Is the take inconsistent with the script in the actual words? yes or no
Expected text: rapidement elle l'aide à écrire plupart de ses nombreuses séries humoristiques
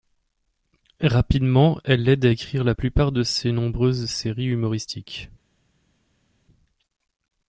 yes